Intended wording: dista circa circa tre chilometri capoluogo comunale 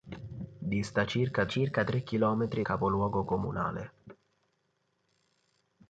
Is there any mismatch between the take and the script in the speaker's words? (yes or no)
no